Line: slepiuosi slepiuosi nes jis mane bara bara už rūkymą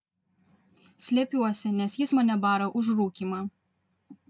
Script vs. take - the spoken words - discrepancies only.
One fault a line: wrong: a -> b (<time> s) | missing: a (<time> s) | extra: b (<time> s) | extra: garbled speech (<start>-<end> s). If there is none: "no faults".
missing: slepiuosi (1.7 s)
missing: bara (2.7 s)